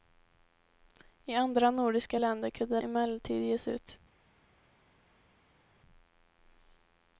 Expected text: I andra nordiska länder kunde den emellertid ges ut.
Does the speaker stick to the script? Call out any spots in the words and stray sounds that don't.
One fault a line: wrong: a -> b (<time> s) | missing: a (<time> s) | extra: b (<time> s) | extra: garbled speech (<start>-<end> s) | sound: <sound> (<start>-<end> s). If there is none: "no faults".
missing: den (2.8 s)